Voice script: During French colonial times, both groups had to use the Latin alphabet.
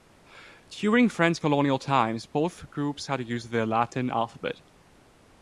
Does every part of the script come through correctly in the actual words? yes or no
yes